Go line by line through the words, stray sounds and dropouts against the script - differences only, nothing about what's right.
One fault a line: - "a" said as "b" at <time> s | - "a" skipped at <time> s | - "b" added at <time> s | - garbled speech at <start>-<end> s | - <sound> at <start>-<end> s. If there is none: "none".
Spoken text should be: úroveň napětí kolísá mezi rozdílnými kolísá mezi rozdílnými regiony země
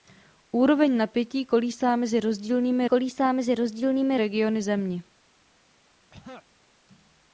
- throat clearing at 6.1-6.5 s